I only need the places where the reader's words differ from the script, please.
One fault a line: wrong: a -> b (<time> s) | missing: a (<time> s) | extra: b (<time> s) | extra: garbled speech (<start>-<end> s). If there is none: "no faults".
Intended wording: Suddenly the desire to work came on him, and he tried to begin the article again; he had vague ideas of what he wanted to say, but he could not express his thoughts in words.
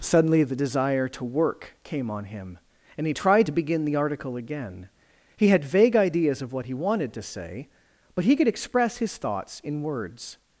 missing: not (8.5 s)